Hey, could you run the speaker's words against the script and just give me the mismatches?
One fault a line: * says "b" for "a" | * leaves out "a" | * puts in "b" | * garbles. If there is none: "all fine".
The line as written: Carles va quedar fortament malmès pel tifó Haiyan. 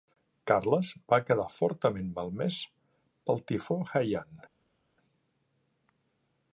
all fine